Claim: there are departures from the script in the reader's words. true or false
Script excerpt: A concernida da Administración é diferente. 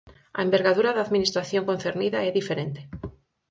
true